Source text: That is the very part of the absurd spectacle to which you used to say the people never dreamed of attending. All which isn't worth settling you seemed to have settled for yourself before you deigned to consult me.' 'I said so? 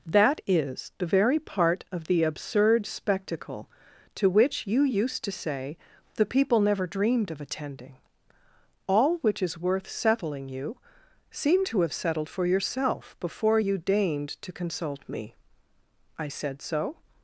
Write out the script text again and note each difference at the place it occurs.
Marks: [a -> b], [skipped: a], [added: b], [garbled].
That is the very part of the absurd spectacle to which you used to say the people never dreamed of attending. All which [isn't -> is] worth settling you seemed to have settled for yourself before you deigned to consult me.' 'I said so?